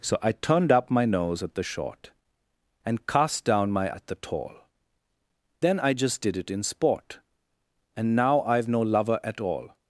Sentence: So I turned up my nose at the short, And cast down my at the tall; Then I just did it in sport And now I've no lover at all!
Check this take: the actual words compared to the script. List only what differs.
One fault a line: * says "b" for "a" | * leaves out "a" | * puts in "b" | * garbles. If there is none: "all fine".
all fine